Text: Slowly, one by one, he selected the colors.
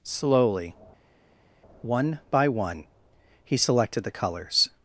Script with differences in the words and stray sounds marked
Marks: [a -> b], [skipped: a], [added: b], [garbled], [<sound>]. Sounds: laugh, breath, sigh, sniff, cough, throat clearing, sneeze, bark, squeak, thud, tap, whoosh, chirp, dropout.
Slowly, one by one, he selected the colors.